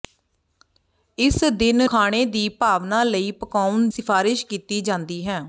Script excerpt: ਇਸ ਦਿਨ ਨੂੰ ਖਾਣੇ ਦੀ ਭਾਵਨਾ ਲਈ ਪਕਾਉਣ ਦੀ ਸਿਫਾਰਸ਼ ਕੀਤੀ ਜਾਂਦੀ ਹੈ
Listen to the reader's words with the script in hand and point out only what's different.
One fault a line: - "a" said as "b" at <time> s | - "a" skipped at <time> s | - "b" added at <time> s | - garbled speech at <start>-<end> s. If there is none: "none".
- "ਨੂੰ" skipped at 1.9 s
- "ਦੀ" skipped at 3.9 s